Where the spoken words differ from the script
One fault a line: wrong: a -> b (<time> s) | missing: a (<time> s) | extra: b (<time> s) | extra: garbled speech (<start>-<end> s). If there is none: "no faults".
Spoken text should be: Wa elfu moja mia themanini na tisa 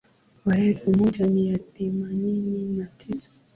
no faults